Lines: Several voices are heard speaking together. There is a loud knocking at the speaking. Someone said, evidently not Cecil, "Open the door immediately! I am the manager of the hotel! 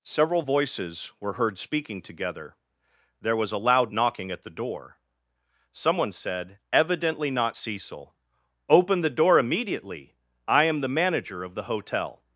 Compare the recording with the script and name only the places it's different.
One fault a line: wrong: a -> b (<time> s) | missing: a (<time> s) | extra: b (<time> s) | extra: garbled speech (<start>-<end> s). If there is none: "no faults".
wrong: are -> were (1.2 s)
wrong: is -> was (3.3 s)
wrong: speaking -> door (4.5 s)